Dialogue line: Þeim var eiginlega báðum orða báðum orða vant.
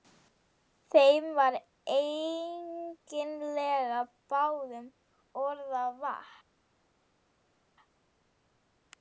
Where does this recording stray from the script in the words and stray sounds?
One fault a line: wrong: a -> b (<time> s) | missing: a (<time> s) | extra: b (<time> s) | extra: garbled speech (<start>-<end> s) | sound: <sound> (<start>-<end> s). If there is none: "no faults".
missing: báðum orða (5.8 s)